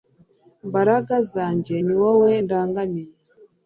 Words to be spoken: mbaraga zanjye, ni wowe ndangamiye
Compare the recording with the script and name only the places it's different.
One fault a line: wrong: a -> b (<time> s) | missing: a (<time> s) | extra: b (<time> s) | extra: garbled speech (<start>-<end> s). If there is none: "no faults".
no faults